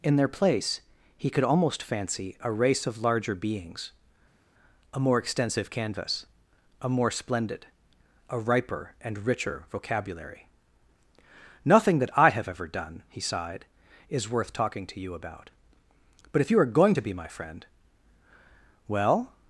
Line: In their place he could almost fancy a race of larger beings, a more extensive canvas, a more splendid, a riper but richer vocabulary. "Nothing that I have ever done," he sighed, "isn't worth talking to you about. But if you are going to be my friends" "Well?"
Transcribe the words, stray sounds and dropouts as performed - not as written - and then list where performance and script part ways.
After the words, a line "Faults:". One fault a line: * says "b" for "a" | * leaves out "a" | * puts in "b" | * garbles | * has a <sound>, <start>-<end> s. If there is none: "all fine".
In their place he could almost fancy a race of larger beings, a more extensive canvas, a more splendid, a riper and richer vocabulary. "Nothing that I have ever done," he sighed, "is worth talking to you about. But if you are going to be my friend" "Well?"
Faults:
* says "and" for "but"
* says "is" for "isn't"
* says "friend" for "friends"